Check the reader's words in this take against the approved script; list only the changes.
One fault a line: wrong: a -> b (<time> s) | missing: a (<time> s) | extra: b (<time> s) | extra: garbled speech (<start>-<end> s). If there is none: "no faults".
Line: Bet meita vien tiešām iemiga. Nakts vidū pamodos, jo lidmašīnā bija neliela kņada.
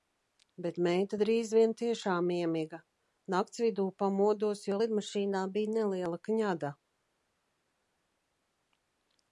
extra: drīz (1.2 s)